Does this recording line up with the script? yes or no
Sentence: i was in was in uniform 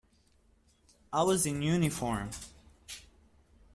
no